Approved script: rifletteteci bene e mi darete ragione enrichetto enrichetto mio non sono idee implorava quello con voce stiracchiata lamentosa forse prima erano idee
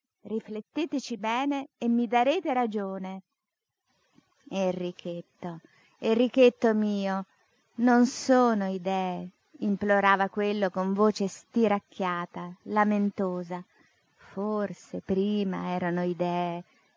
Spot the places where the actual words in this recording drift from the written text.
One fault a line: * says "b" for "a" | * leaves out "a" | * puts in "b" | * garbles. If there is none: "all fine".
all fine